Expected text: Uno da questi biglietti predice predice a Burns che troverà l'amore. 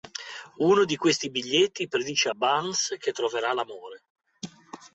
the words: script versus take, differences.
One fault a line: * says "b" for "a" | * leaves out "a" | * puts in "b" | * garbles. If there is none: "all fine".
* says "di" for "da"
* leaves out "predice"